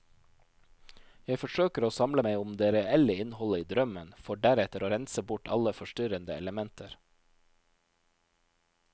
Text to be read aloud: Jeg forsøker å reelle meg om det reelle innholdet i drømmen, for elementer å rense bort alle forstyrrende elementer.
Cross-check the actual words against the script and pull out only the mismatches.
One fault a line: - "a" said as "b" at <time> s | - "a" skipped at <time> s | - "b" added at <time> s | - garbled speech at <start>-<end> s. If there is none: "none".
- "reelle" said as "samle" at 2.0 s
- "elementer" said as "deretter" at 4.4 s